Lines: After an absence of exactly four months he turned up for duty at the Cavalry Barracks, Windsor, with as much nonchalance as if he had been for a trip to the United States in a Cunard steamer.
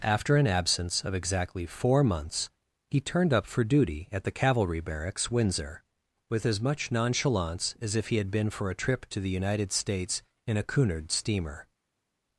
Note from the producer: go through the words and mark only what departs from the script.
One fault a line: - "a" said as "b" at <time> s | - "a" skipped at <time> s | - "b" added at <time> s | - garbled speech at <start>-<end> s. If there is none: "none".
none